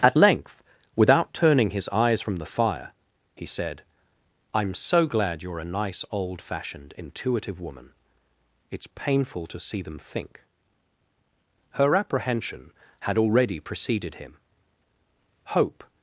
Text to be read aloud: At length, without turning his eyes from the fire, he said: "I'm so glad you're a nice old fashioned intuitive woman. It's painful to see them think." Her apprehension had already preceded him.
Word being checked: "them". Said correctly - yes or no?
yes